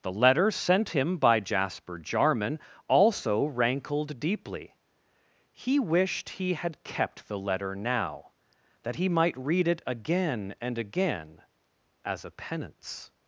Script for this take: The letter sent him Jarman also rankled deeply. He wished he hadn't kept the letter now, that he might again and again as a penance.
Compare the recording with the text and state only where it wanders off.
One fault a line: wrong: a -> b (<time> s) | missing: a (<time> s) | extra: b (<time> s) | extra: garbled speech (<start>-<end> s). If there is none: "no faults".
extra: by Jasper (1.2 s)
wrong: hadn't -> had (6.5 s)
extra: read it (9.4 s)